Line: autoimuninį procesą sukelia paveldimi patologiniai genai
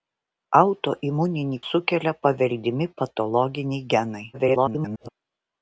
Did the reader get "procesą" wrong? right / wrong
wrong